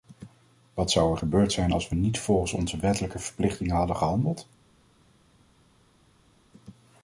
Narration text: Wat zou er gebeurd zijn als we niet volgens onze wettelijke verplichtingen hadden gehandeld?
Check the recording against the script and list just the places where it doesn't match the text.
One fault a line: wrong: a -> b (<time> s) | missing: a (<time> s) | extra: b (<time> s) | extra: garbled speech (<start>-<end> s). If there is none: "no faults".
no faults